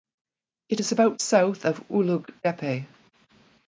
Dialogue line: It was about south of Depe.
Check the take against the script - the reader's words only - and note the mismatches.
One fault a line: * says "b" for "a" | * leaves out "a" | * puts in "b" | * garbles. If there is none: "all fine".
* says "is" for "was"
* puts in "Ulug"